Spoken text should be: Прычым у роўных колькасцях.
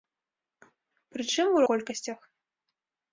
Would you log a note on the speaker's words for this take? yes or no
yes